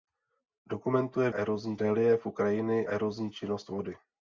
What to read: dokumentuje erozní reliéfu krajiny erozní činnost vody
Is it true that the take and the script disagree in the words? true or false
false